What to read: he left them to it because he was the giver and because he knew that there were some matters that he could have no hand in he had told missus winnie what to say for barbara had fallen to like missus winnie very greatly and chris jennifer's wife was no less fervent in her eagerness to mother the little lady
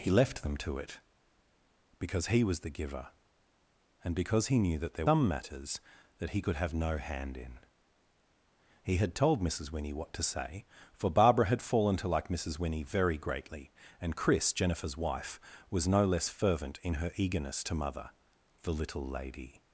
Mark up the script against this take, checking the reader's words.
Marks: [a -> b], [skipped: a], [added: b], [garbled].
he left them to it because he was the giver and because he knew that there [skipped: were] some matters that he could have no hand in he had told missus winnie what to say for barbara had fallen to like missus winnie very greatly and chris jennifer's wife was no less fervent in her eagerness to mother the little lady